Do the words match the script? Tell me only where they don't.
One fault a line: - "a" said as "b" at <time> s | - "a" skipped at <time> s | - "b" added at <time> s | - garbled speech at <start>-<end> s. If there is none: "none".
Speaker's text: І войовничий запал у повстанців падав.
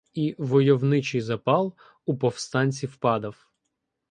none